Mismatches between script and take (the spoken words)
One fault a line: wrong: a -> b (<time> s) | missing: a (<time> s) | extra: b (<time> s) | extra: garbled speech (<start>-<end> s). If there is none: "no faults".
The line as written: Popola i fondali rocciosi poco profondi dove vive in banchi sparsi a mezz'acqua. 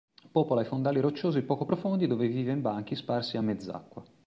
no faults